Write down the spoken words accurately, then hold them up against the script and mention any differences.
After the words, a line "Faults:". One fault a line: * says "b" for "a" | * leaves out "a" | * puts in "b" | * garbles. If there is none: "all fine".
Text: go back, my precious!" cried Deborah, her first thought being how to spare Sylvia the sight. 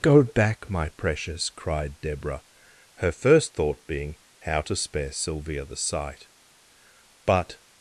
go back, my precious!" cried Deborah, her first thought being how to spare Sylvia the sight. But
Faults:
* puts in "But"